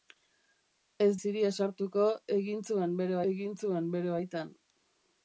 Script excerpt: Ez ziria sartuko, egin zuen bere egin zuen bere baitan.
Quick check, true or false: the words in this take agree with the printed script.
true